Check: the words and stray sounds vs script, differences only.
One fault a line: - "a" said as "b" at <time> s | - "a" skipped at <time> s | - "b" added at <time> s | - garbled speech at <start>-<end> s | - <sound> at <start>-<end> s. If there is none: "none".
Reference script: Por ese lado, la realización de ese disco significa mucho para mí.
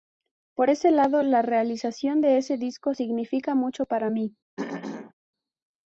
- throat clearing at 4.6-5.1 s